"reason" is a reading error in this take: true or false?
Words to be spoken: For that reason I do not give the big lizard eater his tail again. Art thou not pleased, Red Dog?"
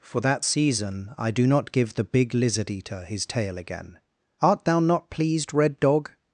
true